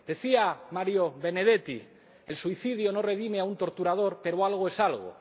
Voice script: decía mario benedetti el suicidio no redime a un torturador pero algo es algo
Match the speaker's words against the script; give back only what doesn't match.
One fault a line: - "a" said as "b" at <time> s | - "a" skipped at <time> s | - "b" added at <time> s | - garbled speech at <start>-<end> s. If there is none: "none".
none